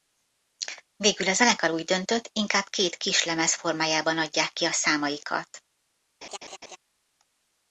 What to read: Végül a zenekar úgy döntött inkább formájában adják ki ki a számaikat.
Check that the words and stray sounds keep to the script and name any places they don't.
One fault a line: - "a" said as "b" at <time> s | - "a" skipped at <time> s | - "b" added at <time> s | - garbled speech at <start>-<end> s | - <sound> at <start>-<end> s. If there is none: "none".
- "két kislemez" added at 2.7 s
- "ki" skipped at 4.6 s
- laugh at 6.2-6.8 s